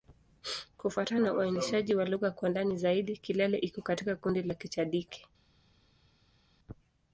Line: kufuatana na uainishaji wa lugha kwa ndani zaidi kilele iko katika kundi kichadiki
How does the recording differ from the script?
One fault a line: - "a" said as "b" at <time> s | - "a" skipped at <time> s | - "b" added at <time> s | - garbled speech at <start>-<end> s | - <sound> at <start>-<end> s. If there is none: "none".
- "la" added at 4.4 s